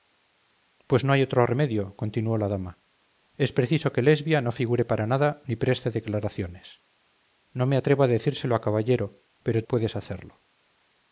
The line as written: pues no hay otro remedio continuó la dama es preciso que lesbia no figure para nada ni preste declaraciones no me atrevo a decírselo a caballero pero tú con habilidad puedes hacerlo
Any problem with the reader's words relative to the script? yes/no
yes